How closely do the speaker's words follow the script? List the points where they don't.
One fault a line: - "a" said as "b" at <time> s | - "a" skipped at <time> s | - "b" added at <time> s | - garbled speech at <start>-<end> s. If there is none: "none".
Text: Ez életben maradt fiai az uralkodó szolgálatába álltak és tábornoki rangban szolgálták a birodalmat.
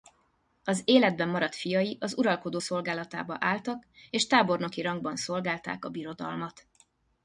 - "Ez" said as "Az" at 0.6 s